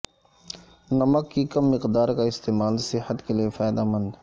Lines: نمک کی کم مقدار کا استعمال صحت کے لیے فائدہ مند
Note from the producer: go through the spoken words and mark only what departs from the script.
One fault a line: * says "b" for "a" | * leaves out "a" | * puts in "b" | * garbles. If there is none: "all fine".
all fine